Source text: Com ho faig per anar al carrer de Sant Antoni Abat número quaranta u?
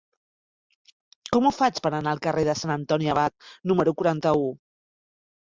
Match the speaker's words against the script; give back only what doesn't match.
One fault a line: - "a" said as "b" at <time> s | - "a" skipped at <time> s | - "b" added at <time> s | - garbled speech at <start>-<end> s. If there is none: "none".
none